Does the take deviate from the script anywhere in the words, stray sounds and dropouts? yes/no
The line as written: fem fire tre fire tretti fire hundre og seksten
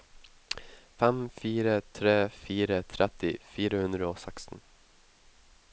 no